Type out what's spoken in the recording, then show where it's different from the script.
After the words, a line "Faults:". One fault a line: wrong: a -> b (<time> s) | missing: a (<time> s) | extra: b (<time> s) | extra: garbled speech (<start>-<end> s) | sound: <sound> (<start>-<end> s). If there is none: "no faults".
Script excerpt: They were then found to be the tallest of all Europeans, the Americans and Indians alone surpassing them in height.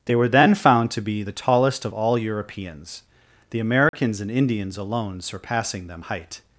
They were then found to be the tallest of all Europeans, the Americans and Indians alone surpassing them height.
Faults:
sound: dropout (3.9-3.9 s)
missing: in (6.0 s)